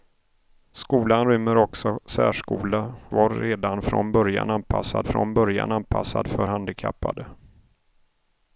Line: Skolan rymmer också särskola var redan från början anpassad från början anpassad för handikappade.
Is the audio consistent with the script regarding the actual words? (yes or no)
yes